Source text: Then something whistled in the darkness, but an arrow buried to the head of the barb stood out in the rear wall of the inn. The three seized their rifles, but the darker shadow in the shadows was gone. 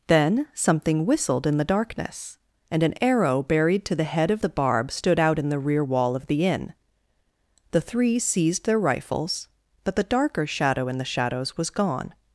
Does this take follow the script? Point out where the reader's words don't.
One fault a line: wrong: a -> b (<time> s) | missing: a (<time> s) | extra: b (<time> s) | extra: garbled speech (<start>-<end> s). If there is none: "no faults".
wrong: but -> and (2.7 s)